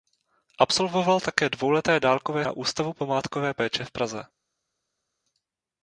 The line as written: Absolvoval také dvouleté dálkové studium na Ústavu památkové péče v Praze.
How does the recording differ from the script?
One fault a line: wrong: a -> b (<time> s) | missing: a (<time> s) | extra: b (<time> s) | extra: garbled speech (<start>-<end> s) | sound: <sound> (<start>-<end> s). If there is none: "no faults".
missing: studium (2.5 s)